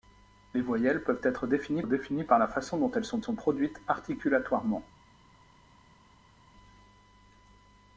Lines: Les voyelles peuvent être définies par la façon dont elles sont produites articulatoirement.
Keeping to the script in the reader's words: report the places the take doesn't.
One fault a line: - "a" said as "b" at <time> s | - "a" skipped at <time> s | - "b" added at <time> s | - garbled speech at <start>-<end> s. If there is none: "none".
- "définies" added at 1.8 s
- "sont" added at 3.2 s